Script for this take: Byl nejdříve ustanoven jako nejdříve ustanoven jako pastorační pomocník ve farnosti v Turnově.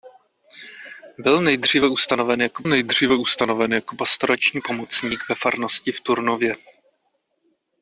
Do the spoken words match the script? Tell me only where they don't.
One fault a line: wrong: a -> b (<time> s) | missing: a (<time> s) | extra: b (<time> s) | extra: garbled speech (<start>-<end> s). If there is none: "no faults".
no faults